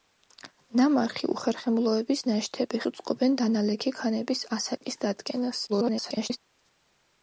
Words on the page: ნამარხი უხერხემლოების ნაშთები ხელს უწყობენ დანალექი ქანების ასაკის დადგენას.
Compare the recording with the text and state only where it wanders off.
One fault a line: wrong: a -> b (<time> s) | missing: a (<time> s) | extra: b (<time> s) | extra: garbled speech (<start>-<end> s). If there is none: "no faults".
missing: ხელს (2.8 s)
extra: garbled speech (5.7-6.4 s)